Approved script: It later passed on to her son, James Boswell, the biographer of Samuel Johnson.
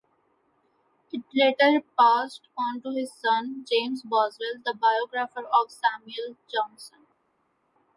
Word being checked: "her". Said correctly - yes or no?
no